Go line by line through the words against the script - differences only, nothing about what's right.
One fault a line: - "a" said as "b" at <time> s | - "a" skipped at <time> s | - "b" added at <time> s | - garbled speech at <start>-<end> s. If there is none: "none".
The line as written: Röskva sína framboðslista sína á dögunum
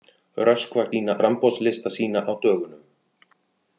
none